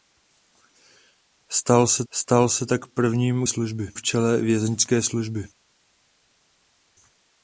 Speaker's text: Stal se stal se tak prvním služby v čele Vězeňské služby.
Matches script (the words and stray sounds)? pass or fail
pass